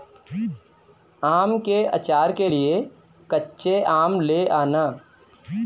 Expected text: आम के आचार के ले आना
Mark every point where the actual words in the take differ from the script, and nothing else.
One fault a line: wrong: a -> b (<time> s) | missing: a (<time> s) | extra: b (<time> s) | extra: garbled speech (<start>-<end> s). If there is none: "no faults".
extra: लिए कच्चे आम (2.5 s)